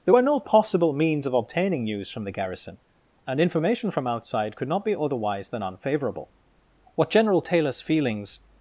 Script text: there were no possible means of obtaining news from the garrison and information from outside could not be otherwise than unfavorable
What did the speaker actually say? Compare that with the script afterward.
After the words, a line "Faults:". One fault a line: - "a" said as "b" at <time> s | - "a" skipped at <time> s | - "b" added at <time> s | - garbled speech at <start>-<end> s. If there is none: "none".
there were no possible means of obtaining news from the garrison and information from outside could not be otherwise than unfavorable what general taylor's feelings
Faults:
- "what general taylor's feelings" added at 6.9 s